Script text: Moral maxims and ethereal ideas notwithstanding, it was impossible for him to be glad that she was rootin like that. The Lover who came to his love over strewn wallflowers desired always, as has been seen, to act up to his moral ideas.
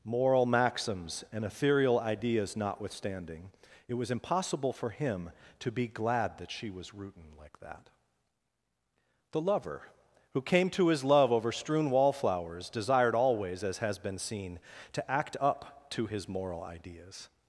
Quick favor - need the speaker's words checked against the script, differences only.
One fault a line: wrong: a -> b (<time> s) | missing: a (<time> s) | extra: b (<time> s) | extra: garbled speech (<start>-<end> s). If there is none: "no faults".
no faults